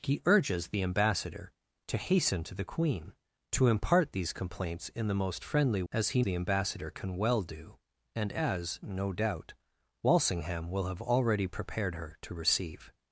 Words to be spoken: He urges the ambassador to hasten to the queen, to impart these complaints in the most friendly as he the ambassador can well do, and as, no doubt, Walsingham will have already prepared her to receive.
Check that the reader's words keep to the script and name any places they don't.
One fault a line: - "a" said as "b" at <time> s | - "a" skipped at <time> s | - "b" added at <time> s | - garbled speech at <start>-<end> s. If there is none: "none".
none